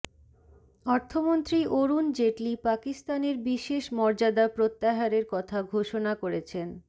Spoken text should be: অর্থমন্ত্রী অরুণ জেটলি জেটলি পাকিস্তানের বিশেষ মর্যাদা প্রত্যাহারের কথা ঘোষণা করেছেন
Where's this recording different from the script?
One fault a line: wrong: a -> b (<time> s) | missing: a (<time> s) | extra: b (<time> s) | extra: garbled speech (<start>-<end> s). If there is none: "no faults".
missing: জেটলি (2.5 s)